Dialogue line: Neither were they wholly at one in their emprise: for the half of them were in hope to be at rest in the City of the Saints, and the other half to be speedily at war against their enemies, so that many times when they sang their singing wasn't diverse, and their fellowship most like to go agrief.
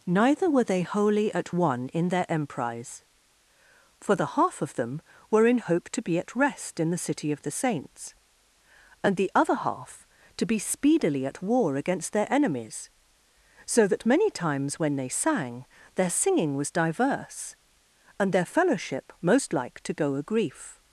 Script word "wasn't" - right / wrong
wrong